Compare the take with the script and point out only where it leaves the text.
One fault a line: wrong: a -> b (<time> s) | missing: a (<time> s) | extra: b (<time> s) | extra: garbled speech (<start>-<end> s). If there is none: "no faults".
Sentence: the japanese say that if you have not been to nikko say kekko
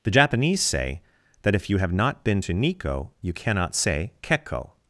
extra: you cannot (3.2 s)